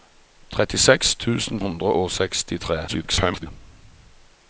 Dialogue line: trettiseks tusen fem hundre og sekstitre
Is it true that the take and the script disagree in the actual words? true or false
true